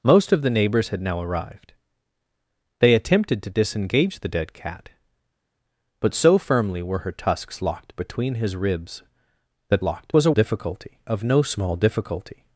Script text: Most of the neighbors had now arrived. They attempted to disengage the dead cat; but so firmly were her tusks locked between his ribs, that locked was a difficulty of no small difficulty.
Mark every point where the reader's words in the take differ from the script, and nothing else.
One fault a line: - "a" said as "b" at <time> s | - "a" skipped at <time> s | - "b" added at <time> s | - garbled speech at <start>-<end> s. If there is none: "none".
none